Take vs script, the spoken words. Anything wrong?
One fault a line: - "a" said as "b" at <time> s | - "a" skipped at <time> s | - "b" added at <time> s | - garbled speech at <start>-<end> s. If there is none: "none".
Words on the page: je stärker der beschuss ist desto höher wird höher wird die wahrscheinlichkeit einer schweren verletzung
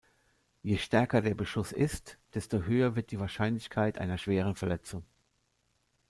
- "höher wird" skipped at 3.1 s